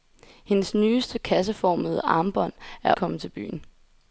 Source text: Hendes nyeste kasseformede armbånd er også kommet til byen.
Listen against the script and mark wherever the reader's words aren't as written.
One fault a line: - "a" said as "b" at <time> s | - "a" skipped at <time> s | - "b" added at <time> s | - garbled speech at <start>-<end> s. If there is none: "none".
- "også" skipped at 2.9 s